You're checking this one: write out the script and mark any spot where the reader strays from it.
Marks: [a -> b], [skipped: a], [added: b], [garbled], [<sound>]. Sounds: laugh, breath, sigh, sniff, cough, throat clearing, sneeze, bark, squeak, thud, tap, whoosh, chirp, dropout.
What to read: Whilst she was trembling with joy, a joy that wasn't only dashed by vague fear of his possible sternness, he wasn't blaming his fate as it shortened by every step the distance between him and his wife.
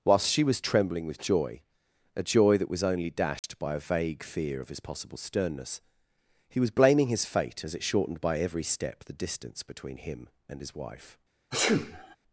Whilst she was trembling with joy, a joy that [wasn't -> was] only dashed [dropout] by [added: a] vague fear of his possible sternness, he [wasn't -> was] blaming his fate as it shortened by every step the distance between him and his wife. [sneeze]